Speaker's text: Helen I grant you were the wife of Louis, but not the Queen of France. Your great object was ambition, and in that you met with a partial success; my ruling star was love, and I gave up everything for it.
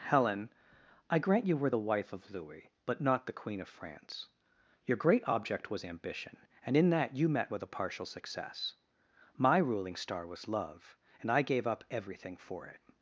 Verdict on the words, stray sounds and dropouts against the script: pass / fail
pass